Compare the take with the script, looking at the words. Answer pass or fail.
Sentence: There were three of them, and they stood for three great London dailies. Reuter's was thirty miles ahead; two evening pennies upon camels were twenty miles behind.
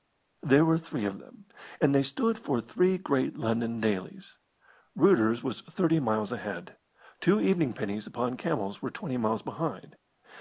pass